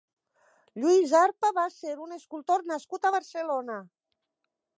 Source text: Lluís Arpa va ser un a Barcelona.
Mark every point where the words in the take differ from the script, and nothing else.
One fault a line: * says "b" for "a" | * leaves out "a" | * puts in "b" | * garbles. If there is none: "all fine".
* puts in "escultor nascut"